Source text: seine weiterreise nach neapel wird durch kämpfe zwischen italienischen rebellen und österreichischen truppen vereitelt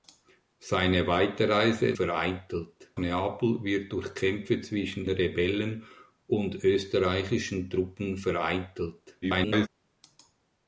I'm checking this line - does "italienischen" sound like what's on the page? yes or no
no